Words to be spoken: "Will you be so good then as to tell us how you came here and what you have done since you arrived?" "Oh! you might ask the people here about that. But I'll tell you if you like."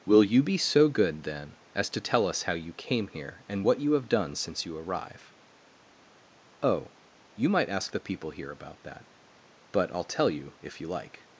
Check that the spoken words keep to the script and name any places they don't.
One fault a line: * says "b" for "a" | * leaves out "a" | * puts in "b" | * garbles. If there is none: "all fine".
* says "arrive" for "arrived"